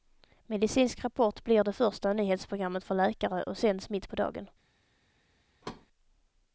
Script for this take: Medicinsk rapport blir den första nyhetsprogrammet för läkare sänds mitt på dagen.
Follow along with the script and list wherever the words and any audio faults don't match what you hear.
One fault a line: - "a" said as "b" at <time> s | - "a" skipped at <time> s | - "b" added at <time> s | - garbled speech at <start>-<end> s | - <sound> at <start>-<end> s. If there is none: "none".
- "den" said as "det" at 1.6 s
- "och" added at 3.4 s
- thud at 5.6-5.9 s